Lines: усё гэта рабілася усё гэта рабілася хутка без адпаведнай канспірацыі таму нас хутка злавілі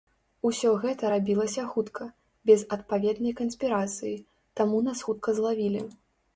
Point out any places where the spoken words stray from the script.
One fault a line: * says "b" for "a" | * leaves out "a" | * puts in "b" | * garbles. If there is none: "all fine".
* leaves out "усё гэта рабілася"